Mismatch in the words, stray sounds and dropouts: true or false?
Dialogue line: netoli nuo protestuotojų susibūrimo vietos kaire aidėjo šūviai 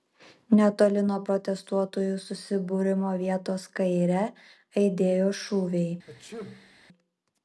true